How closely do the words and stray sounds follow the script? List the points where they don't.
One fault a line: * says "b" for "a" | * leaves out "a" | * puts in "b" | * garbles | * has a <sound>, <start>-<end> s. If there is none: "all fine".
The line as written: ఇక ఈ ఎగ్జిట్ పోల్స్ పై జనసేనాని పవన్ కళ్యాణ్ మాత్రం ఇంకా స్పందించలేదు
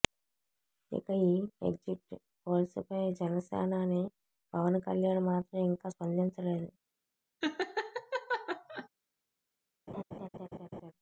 * has a laugh, 7.4-8.9 s
* has a laugh, 9.9-10.9 s